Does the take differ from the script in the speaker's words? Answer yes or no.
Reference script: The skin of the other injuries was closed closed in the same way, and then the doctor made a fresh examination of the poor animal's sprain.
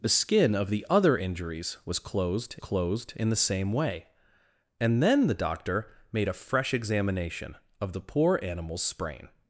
no